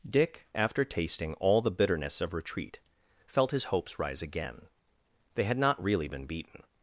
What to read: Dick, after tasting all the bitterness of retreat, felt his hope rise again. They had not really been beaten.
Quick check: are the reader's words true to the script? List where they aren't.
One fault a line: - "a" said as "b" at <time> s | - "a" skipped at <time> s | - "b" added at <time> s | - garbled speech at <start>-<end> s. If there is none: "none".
- "hope" said as "hopes" at 3.6 s